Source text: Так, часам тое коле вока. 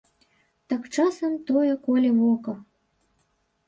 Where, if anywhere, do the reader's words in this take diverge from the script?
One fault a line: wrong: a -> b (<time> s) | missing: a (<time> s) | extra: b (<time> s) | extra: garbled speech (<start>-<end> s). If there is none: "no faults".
no faults